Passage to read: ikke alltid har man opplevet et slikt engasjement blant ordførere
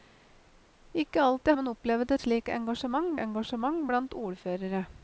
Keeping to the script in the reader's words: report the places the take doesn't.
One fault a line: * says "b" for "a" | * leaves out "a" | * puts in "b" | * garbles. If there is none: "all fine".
* leaves out "har"
* puts in "engasjement"